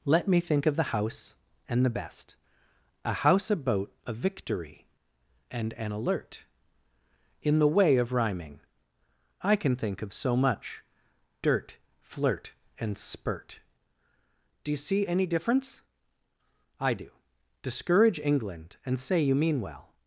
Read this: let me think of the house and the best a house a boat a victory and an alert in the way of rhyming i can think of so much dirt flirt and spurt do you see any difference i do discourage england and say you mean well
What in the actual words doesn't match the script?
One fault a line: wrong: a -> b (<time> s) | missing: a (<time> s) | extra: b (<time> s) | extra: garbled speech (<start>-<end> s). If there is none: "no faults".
no faults